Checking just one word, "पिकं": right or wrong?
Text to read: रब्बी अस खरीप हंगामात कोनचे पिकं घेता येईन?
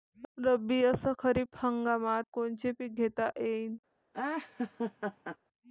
right